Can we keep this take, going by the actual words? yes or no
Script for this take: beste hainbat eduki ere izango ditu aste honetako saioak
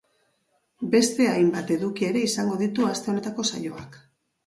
yes